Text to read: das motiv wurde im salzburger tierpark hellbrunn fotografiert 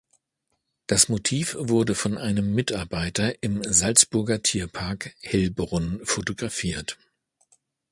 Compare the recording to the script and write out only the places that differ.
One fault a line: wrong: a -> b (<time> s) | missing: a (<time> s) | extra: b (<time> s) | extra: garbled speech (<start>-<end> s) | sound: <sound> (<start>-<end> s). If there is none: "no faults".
extra: von einem mitarbeiter (1.9 s)